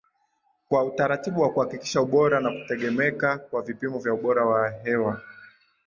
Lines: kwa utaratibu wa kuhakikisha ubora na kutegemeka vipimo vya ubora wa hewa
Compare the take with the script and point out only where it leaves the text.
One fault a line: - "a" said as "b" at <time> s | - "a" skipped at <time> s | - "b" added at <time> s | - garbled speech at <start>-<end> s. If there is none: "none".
- "kwa" added at 3.4 s